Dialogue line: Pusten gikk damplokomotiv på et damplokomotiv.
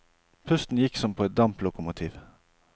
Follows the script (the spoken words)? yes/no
no